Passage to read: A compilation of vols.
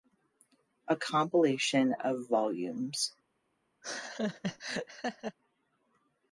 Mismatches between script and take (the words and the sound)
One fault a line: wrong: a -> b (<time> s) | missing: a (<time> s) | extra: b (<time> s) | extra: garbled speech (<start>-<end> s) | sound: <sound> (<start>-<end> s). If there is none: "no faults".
sound: laugh (3.8-5.4 s)